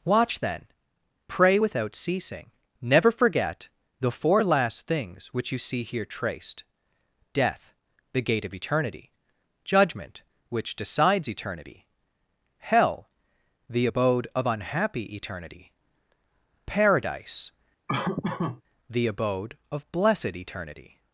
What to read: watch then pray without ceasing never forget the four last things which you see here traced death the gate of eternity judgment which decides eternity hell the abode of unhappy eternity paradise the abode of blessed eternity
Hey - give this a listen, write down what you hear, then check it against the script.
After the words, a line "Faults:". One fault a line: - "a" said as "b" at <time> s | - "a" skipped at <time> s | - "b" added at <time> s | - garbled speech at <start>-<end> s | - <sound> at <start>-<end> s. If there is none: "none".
watch then pray without ceasing never forget the four last things which you see here traced death the gate of eternity judgment which decides eternity hell the abode of unhappy eternity paradise the abode of blessed eternity
Faults:
- laugh at 17.9-18.6 s